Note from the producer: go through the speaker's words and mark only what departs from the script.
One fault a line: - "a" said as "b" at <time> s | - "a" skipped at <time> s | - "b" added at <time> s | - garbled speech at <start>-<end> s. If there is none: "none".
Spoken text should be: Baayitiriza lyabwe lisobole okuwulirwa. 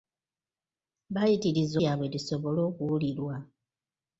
none